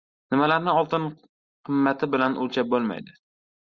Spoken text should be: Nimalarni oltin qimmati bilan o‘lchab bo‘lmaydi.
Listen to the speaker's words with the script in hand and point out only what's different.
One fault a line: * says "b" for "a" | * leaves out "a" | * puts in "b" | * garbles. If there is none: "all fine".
all fine